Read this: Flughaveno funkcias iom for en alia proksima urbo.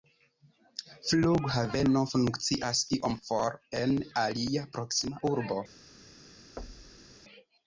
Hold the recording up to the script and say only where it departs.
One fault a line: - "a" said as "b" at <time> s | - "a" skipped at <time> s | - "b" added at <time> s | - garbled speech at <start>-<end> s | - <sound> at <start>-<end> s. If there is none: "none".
- thud at 6.6-7.1 s